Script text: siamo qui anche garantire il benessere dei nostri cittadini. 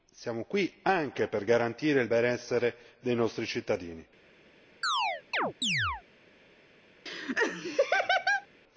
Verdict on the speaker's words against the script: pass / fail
fail